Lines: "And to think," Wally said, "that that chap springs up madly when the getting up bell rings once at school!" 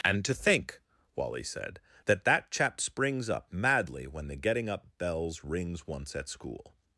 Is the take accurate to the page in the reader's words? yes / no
no